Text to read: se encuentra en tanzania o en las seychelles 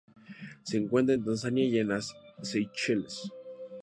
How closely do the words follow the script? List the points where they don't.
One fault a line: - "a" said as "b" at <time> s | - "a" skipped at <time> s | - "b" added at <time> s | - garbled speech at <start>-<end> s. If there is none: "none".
- "o" said as "y" at 1.6 s